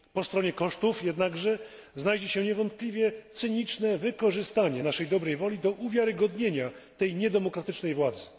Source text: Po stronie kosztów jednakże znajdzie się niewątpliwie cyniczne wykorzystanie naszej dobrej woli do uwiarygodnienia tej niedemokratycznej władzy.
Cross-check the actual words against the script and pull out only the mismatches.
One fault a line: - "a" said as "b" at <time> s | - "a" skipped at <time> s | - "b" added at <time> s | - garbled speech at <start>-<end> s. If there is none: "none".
none